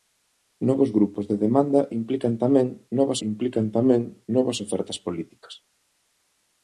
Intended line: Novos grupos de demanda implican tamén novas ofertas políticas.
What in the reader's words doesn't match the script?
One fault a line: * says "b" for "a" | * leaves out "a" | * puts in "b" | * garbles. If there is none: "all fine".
* puts in "implican tamén novas"